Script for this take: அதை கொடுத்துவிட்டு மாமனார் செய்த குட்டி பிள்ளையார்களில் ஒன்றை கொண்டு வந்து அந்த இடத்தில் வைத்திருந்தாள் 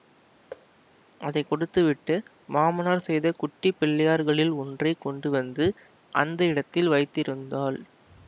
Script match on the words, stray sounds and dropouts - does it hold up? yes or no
no